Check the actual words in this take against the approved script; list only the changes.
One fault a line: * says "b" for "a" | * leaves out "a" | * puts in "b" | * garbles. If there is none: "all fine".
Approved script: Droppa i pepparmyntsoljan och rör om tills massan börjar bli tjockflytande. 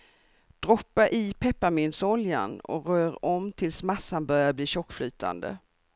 all fine